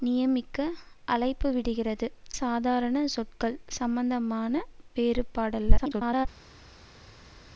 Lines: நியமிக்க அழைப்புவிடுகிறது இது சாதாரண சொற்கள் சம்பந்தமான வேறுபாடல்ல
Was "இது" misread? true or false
true